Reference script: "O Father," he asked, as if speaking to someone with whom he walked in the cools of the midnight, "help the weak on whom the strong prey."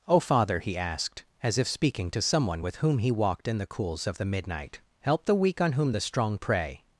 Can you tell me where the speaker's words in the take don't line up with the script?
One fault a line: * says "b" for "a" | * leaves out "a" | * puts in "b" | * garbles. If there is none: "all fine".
all fine